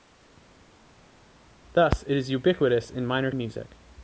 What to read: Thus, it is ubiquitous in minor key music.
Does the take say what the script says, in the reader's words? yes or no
no